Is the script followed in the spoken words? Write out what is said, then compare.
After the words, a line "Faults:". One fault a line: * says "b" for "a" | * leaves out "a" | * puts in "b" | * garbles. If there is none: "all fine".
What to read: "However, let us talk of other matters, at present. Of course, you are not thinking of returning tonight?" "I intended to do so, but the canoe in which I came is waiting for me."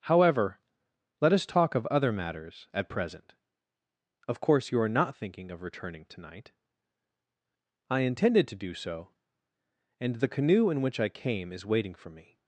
"However, let us talk of other matters, at present. Of course, you are not thinking of returning tonight?" "I intended to do so, and the canoe in which I came is waiting for me."
Faults:
* says "and" for "but"